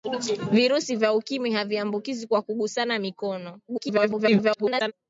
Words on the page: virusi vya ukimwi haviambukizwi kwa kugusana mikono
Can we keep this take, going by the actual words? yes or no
no